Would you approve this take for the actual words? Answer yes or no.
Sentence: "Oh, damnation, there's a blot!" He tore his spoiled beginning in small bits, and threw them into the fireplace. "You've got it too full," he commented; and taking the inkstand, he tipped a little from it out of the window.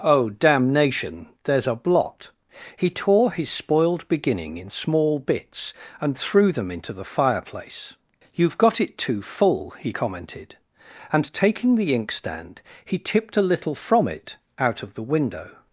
yes